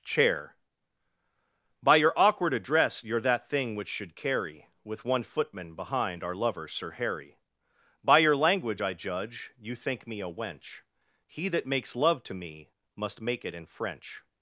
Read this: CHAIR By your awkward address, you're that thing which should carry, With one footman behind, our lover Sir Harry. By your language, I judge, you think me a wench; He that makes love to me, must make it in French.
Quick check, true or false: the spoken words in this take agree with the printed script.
true